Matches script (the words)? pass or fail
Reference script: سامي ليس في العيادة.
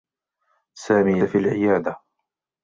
fail